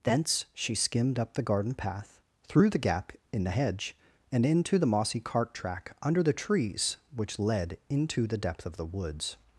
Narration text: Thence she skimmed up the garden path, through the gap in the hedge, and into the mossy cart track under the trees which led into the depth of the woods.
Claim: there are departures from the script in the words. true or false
false